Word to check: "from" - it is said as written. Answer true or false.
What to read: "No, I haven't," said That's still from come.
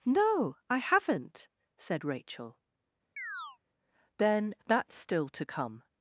false